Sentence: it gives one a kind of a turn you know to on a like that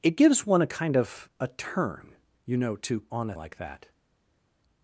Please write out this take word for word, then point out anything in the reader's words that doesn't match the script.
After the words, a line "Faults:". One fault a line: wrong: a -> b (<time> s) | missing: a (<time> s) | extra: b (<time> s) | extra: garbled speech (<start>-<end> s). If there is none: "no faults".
it gives one a kind of a turn you know to on a like that
Faults:
no faults